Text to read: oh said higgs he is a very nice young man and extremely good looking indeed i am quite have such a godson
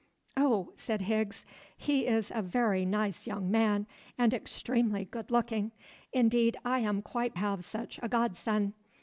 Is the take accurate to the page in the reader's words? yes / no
yes